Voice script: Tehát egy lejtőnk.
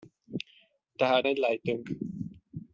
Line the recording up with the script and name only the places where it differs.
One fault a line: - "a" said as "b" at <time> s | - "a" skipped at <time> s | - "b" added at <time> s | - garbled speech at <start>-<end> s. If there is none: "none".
none